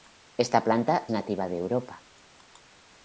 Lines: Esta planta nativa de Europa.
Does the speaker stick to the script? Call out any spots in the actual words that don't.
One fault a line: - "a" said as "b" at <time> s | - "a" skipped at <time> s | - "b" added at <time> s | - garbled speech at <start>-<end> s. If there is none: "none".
none